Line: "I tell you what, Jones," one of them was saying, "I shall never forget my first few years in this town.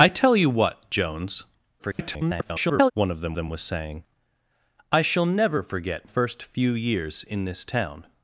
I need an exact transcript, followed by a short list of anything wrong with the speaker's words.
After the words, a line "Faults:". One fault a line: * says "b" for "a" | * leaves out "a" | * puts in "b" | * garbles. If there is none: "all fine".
"I tell you what, Jones," [garbled] one of them them was saying, "I shall never forget first few years in this town.
Faults:
* garbles
* puts in "them"
* leaves out "my"